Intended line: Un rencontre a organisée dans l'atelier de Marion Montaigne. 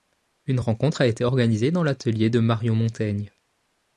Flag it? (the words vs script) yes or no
yes